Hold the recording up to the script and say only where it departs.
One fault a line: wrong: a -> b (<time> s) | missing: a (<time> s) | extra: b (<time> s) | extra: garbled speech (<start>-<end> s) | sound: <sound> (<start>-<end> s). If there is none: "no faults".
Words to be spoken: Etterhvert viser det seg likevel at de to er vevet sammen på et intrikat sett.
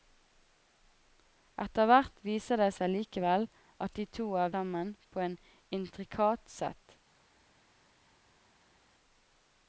missing: vevet (4.6 s)